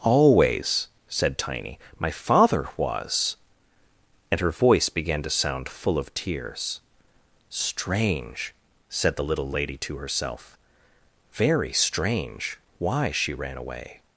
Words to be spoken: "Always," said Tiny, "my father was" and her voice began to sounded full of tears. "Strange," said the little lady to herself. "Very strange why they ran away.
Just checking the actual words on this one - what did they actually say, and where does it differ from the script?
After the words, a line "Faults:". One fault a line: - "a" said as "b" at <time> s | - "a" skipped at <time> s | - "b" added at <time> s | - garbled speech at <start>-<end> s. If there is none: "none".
"Always," said Tiny, "my father was" and her voice began to sound full of tears. "Strange," said the little lady to herself. "Very strange why she ran away.
Faults:
- "sounded" said as "sound" at 5.3 s
- "they" said as "she" at 13.1 s